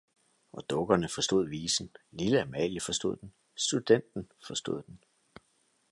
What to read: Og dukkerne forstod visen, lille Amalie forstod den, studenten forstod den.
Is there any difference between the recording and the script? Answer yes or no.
no